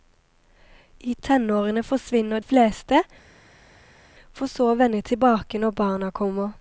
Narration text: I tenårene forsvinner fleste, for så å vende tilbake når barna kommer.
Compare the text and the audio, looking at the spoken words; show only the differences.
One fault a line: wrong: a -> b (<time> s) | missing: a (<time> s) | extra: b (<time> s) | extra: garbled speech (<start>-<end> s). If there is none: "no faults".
no faults